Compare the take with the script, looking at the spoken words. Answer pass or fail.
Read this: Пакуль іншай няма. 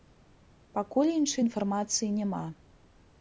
fail